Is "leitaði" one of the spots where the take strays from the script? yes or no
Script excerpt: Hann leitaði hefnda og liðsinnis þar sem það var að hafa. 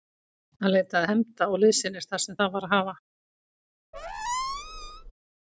no